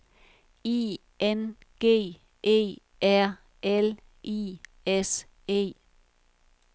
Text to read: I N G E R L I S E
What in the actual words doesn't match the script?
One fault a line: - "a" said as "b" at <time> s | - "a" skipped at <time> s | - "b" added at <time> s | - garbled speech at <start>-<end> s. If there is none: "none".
none